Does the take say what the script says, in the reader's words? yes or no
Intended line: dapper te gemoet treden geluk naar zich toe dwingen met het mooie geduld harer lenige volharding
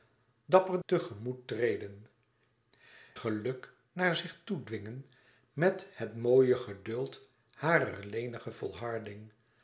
yes